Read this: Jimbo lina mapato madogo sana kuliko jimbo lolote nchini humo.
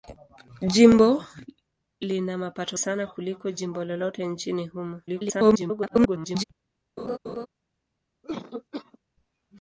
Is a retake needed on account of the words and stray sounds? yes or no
yes